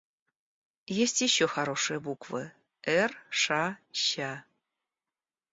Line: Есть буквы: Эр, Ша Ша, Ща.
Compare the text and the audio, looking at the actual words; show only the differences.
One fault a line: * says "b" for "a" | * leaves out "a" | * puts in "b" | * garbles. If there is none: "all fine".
* puts in "еще хорошие"
* leaves out "Ша"